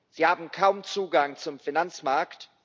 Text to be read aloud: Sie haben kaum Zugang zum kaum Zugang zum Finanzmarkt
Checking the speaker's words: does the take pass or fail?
fail